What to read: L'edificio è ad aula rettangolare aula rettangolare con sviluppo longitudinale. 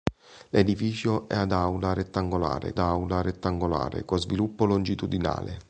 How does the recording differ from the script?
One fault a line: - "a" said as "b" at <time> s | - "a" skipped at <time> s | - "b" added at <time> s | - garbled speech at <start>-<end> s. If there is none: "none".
none